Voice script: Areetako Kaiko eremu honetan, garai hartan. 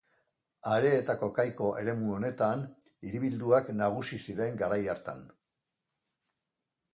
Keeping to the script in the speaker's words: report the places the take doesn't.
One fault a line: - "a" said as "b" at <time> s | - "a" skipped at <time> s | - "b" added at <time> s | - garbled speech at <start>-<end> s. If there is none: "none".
- "hiribilduak nagusi ziren" added at 3.1 s